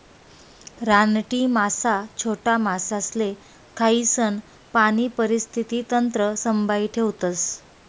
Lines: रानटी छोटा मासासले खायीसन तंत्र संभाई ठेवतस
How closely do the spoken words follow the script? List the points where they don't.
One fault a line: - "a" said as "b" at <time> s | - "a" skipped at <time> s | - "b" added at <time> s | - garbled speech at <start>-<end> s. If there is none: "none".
- "मासा" added at 1.5 s
- "पाणी परिस्थिती" added at 4.7 s